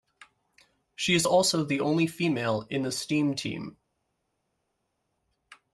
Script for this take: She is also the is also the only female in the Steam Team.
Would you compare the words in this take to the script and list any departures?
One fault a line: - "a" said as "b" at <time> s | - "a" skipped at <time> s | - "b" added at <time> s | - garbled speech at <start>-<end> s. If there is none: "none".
- "is also the" skipped at 1.8 s